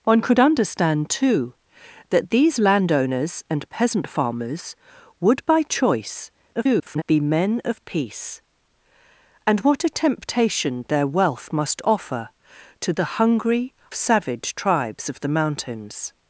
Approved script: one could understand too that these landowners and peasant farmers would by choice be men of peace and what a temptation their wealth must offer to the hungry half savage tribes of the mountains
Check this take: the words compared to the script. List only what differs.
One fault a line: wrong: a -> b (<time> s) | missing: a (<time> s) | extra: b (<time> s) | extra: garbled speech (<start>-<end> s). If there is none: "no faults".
extra: garbled speech (6.5-7.0 s)
missing: half (13.7 s)